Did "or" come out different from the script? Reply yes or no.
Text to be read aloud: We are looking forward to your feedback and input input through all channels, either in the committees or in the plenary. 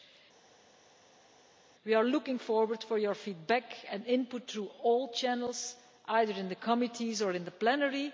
no